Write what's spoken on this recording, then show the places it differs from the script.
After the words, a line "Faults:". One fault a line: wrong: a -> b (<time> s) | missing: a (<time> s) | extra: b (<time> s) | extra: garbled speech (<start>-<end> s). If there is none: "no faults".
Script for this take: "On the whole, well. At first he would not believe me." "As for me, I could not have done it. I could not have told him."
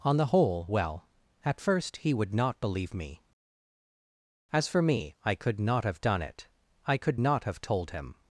"On the whole, well. At first he would not believe me." "As for me, I could not have done it. I could not have told him."
Faults:
no faults